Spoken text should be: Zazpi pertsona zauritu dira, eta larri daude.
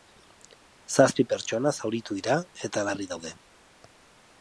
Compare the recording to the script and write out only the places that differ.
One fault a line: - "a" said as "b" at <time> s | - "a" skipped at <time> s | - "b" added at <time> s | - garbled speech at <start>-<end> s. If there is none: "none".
none